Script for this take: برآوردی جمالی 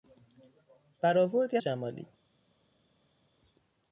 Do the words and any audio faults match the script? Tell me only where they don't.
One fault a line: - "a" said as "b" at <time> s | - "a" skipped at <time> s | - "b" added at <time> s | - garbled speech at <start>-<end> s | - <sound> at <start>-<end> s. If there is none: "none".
none